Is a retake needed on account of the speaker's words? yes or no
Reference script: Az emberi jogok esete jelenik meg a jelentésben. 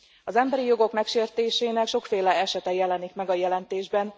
yes